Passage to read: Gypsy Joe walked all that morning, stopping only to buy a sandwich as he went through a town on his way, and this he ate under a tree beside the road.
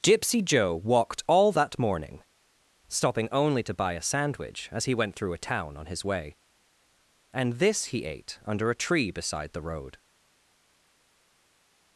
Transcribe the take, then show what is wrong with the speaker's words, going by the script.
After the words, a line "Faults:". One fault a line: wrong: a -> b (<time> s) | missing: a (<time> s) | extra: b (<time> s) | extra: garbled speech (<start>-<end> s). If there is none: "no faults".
Gypsy Joe walked all that morning, stopping only to buy a sandwich as he went through a town on his way, and this he ate under a tree beside the road.
Faults:
no faults